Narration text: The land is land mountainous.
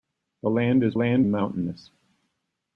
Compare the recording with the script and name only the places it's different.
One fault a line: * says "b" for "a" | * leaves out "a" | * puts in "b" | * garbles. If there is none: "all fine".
all fine